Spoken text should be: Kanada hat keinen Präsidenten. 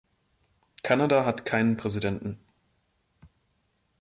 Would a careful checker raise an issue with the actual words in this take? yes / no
no